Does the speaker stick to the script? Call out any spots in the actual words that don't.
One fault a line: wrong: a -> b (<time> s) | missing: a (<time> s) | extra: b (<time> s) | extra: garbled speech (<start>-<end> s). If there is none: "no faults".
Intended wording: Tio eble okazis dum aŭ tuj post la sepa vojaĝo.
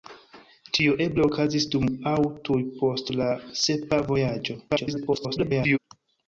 extra: garbled speech (4.7-5.8 s)